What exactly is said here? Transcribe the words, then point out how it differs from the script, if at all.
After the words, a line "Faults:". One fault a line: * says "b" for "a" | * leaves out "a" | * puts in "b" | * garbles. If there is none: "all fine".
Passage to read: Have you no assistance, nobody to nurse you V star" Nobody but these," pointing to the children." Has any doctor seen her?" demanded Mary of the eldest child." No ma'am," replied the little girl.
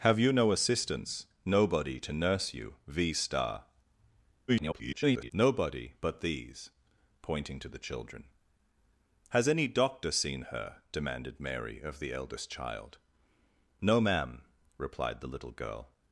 Have you no assistance, nobody to nurse you V star" [garbled] Nobody but these," pointing to the children." Has any doctor seen her?" demanded Mary of the eldest child." No ma'am," replied the little girl.
Faults:
* garbles